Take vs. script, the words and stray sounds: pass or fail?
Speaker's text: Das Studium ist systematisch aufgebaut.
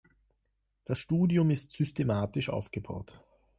pass